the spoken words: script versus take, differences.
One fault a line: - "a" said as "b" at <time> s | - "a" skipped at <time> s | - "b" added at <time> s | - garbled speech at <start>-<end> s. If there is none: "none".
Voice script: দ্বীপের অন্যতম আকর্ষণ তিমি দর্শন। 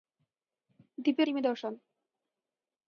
- "অন্যতম আকর্ষণ" skipped at 1.3 s